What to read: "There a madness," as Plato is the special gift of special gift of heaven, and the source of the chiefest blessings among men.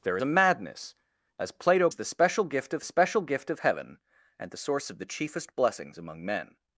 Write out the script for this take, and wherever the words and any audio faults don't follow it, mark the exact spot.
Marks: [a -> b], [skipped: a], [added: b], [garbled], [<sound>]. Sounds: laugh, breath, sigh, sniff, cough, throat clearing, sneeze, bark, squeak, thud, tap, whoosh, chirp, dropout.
"There a madness," as Plato is the special gift of special gift of heaven, and the source of the chiefest blessings among men.